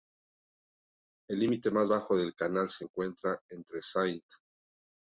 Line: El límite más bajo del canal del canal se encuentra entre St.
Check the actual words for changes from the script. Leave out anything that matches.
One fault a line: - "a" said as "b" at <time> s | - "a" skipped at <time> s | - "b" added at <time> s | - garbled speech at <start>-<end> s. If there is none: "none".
- "del canal" skipped at 2.7 s